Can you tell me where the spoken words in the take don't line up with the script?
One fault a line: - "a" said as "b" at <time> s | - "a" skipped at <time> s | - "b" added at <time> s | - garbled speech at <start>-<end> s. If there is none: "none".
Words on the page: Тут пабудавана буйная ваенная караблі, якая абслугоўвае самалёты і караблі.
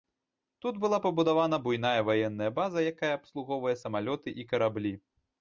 - "была" added at 0.8 s
- "караблі" said as "база" at 2.6 s